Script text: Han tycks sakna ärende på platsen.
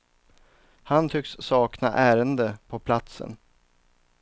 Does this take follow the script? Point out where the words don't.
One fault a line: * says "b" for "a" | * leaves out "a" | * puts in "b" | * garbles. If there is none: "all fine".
all fine